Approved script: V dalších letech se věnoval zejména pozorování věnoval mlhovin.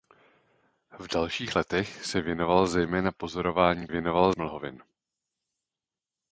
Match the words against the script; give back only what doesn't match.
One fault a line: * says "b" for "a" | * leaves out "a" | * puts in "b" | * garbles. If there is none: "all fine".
all fine